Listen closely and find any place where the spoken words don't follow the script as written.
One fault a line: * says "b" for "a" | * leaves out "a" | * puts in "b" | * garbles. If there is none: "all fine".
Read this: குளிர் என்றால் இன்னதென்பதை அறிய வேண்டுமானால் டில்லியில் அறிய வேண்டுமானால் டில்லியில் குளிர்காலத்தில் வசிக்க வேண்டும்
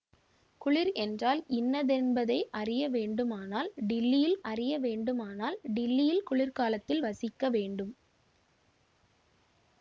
all fine